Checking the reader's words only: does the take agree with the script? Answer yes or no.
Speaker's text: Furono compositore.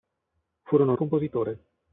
yes